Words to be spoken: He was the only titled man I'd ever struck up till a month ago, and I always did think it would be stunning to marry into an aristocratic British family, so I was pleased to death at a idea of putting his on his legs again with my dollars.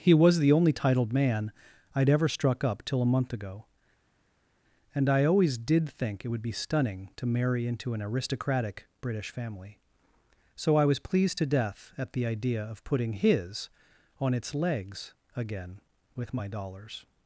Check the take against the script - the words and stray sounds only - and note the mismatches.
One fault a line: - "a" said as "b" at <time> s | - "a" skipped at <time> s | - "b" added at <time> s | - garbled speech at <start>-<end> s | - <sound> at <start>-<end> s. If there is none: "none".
- "a" said as "the" at 12.1 s
- "his" said as "its" at 14.3 s